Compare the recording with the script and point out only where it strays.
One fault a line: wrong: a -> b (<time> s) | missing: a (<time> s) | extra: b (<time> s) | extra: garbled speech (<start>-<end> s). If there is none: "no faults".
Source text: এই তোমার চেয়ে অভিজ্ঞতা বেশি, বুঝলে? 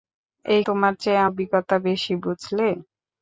no faults